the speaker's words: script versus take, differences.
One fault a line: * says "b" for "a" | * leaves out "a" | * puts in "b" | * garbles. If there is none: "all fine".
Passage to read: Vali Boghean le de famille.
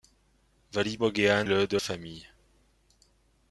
all fine